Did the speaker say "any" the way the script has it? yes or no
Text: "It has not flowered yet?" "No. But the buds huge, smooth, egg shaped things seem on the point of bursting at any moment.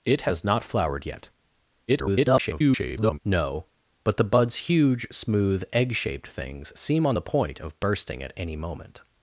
yes